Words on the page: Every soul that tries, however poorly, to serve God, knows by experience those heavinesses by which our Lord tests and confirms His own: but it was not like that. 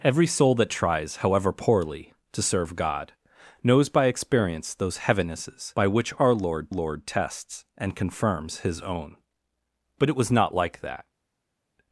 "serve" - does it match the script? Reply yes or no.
yes